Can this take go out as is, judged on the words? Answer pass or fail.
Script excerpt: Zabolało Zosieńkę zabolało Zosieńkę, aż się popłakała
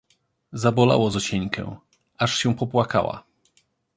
fail